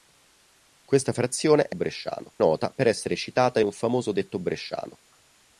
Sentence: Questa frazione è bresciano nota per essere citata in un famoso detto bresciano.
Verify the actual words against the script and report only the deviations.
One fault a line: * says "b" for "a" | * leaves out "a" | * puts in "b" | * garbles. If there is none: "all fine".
all fine